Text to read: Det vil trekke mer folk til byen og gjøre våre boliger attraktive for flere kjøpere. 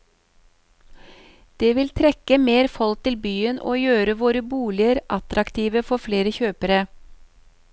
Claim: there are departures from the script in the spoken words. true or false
false